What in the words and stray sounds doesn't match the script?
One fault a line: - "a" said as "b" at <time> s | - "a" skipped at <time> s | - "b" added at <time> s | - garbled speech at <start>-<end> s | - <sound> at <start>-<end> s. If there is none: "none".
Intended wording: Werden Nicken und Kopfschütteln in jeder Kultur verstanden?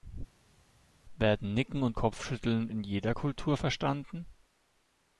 none